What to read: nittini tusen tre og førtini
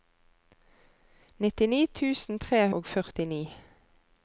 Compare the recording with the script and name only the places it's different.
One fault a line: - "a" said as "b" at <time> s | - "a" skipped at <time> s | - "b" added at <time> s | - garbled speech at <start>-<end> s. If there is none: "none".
none